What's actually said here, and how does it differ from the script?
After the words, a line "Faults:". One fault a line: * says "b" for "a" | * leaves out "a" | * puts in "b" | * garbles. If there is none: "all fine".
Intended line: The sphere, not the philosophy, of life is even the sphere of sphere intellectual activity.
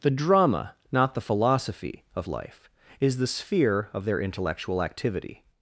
The drama, not the philosophy, of life is the sphere of their intellectual activity.
Faults:
* says "drama" for "sphere"
* leaves out "even"
* says "their" for "sphere"